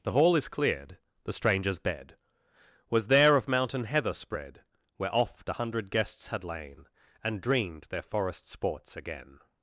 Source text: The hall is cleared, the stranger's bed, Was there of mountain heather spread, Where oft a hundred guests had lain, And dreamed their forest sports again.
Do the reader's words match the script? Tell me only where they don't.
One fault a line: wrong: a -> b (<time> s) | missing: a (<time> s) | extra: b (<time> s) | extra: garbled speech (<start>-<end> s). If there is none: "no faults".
no faults